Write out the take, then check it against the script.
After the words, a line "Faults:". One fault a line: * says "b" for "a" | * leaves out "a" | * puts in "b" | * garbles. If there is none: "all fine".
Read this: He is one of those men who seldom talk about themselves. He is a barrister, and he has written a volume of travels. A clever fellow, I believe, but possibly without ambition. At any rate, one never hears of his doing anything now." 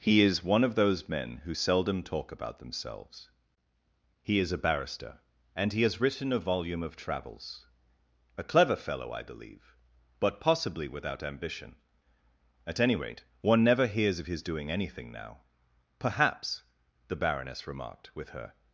He is one of those men who seldom talk about themselves. He is a barrister, and he has written a volume of travels. A clever fellow, I believe, but possibly without ambition. At any rate, one never hears of his doing anything now." "Perhaps," the Baroness remarked, with her
Faults:
* puts in "Perhaps the Baroness remarked with her"